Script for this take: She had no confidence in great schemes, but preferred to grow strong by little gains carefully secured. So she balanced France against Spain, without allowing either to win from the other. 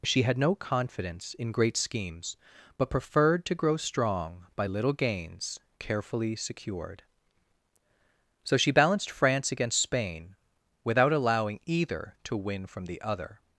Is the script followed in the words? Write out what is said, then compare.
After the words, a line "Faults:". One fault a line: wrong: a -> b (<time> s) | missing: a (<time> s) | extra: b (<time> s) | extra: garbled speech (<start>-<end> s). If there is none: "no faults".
She had no confidence in great schemes, but preferred to grow strong by little gains carefully secured. So she balanced France against Spain, without allowing either to win from the other.
Faults:
no faults